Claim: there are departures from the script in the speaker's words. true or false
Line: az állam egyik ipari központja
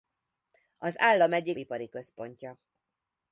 false